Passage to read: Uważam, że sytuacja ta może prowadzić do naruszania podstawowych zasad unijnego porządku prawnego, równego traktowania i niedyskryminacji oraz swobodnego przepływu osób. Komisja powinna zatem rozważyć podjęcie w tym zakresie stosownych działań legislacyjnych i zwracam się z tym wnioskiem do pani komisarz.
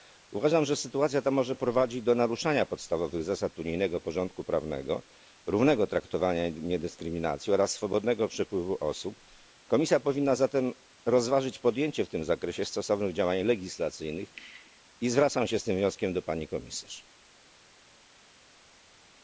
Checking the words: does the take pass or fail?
pass